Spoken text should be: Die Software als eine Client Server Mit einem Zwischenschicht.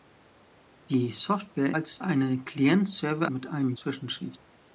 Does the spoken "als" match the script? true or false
true